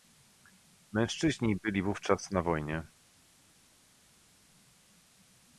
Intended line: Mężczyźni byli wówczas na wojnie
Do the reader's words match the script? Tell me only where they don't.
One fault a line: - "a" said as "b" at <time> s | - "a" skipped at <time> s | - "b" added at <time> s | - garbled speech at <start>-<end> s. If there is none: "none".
none